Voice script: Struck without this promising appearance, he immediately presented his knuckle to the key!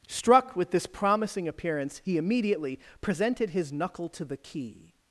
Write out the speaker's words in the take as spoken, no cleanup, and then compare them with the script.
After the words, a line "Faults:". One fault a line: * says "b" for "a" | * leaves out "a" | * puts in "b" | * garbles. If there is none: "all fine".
Struck with this promising appearance, he immediately presented his knuckle to the key!
Faults:
* says "with" for "without"